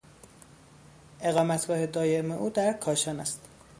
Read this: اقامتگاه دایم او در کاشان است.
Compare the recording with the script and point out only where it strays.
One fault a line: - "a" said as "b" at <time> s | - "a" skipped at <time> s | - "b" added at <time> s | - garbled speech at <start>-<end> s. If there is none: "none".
none